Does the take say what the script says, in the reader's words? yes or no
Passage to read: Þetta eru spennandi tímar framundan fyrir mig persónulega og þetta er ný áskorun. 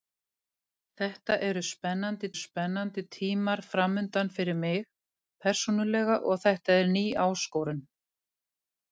no